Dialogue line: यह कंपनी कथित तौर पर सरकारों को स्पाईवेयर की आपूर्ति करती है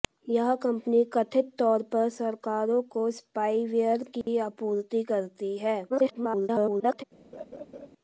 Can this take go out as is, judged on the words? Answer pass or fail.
fail